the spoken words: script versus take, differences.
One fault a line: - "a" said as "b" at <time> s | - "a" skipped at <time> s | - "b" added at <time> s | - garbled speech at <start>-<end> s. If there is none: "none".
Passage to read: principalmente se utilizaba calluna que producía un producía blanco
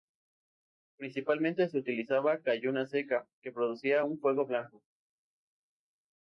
- "seca" added at 2.9 s
- "producía" said as "fuego" at 4.2 s